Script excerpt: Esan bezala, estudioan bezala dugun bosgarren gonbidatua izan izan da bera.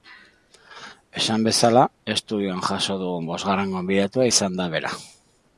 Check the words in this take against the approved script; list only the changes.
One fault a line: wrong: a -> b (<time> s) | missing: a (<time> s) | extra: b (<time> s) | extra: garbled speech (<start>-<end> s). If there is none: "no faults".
wrong: bezala -> jaso (2.7 s)
missing: izan (4.6 s)